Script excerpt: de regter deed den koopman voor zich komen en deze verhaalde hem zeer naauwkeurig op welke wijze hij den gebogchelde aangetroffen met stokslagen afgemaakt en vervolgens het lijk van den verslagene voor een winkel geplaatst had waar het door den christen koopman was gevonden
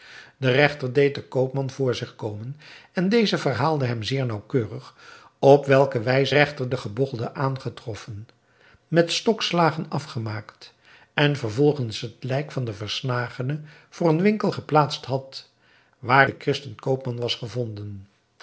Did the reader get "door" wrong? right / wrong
wrong